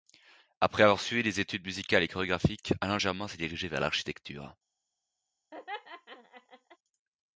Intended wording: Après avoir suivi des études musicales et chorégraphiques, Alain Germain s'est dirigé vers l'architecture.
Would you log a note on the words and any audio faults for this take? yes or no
yes